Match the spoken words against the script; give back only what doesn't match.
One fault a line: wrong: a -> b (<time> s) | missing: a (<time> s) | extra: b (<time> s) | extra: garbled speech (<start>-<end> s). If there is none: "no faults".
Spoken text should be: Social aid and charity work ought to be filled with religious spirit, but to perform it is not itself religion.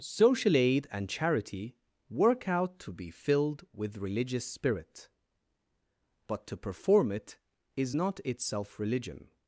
wrong: ought -> out (2.5 s)